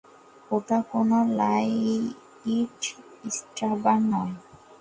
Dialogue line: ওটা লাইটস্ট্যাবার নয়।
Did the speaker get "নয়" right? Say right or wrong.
right